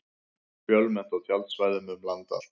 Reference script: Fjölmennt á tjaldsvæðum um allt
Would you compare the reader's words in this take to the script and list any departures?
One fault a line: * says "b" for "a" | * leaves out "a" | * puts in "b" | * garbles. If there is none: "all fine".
* puts in "land"